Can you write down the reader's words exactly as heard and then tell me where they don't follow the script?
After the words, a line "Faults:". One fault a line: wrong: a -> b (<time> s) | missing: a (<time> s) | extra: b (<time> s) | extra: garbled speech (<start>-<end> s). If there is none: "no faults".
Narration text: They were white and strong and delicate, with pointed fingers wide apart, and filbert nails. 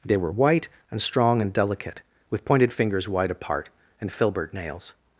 They were white and strong and delicate, with pointed fingers wide apart, and filbert nails.
Faults:
no faults